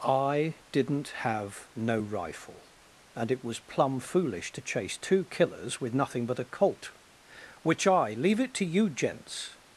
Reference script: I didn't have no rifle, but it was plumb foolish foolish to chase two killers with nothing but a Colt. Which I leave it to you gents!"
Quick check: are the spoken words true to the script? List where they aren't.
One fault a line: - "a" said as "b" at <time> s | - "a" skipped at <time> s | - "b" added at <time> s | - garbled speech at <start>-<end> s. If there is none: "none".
- "but" said as "and" at 3.2 s
- "foolish" skipped at 4.5 s